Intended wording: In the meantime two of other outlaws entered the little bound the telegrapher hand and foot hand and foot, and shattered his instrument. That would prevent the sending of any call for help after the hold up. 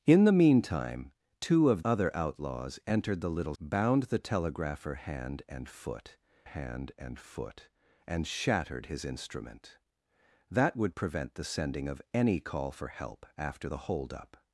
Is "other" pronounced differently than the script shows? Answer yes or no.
no